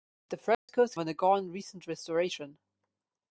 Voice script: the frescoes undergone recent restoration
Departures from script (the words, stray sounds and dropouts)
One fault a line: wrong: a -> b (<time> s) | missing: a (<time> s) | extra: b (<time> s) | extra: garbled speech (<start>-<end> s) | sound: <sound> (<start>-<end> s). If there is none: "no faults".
sound: dropout (0.5-0.7 s)